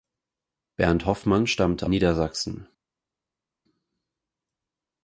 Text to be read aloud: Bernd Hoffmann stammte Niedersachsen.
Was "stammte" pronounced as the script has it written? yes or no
yes